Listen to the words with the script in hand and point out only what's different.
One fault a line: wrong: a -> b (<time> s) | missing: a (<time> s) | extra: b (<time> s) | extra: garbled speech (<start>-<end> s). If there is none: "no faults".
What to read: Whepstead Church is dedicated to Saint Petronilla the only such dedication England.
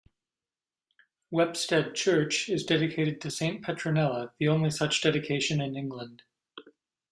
extra: in (5.6 s)